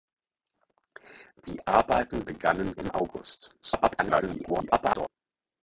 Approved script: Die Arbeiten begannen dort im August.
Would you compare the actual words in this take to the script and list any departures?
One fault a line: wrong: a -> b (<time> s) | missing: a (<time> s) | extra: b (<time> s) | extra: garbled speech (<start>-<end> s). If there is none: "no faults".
missing: dort (2.7 s)
extra: garbled speech (3.6-5.1 s)